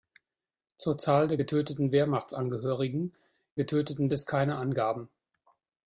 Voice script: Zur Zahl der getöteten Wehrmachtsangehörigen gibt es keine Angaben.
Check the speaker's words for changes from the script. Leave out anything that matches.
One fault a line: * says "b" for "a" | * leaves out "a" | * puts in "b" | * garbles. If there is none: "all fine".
* says "getöteten" for "gibt"